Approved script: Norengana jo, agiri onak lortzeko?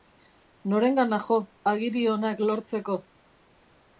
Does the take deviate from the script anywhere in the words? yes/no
no